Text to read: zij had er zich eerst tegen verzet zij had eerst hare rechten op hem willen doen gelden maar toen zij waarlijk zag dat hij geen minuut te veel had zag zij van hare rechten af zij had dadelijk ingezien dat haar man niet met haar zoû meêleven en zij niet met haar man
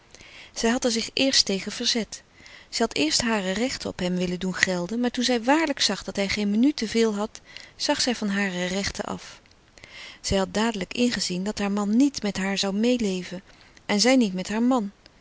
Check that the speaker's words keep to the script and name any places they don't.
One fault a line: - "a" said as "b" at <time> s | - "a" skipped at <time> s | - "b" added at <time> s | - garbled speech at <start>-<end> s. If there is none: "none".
none